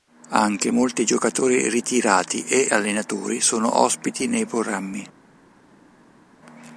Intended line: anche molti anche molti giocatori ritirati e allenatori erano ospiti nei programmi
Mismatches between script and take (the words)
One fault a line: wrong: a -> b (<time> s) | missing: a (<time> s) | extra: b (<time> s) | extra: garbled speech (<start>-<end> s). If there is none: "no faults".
missing: anche molti (1.0 s)
wrong: erano -> sono (3.4 s)